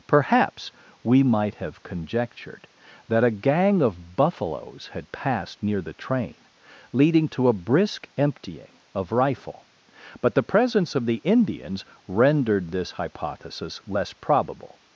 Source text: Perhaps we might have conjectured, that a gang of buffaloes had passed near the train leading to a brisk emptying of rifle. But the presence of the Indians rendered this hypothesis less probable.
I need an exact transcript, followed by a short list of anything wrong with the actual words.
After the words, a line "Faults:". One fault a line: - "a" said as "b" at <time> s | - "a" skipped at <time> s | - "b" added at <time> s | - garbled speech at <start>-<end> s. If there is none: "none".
Perhaps we might have conjectured, that a gang of buffaloes had passed near the train leading to a brisk emptying of rifle. But the presence of the Indians rendered this hypothesis less probable.
Faults:
none